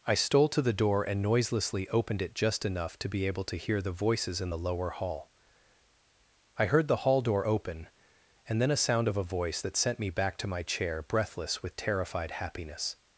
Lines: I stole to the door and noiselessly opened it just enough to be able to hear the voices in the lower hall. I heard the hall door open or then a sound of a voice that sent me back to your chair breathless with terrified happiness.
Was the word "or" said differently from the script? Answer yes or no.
yes